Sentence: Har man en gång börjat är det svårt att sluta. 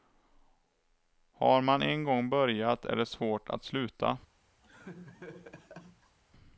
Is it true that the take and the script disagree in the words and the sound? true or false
true